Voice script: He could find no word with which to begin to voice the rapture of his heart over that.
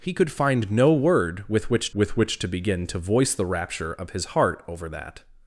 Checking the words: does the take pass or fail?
fail